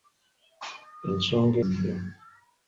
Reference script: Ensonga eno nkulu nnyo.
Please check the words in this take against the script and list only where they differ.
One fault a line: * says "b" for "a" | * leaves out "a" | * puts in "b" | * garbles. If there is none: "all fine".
* leaves out "eno nkulu"